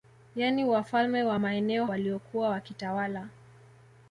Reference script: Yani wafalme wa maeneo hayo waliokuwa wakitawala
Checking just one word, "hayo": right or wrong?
wrong